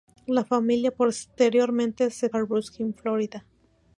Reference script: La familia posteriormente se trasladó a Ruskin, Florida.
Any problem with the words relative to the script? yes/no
yes